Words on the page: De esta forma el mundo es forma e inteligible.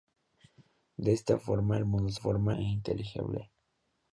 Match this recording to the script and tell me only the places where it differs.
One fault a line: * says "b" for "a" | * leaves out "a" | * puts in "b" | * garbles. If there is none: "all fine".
all fine